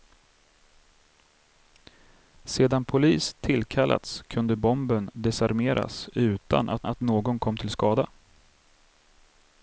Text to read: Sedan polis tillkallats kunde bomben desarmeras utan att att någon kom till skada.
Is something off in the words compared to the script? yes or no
no